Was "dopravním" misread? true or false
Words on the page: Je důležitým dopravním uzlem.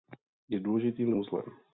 true